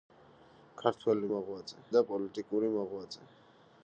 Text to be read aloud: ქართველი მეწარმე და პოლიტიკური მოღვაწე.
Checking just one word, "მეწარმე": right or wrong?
wrong